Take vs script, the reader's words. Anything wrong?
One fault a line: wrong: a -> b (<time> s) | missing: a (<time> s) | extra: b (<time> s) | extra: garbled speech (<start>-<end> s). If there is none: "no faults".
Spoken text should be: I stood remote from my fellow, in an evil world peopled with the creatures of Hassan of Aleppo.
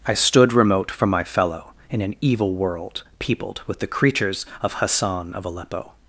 no faults